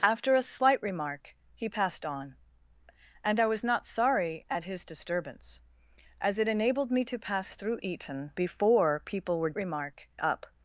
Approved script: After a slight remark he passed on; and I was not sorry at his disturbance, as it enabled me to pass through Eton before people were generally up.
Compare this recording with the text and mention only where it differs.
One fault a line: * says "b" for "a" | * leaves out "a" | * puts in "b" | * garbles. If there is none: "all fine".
* says "remark" for "generally"